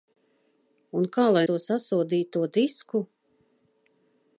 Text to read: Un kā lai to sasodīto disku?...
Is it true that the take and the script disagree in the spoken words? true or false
false